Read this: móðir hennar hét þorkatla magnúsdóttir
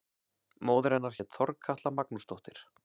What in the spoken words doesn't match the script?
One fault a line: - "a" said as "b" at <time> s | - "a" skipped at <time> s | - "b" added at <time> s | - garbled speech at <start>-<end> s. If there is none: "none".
none